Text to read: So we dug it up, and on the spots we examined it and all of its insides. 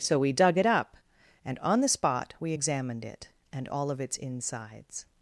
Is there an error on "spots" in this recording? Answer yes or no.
yes